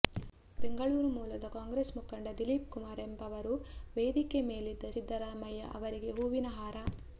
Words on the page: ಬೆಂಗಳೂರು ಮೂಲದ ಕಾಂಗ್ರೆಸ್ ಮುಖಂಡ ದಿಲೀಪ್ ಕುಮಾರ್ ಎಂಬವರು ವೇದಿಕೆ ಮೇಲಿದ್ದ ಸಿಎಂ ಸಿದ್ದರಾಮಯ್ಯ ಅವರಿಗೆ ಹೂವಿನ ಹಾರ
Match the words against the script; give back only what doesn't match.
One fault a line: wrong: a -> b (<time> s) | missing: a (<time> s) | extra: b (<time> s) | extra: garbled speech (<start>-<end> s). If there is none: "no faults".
missing: ಸಿಎಂ (4.9 s)